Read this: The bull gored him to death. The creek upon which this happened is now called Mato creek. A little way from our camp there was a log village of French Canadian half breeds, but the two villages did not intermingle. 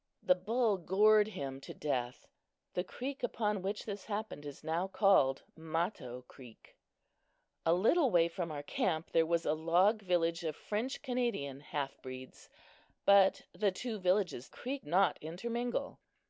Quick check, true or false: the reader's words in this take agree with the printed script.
false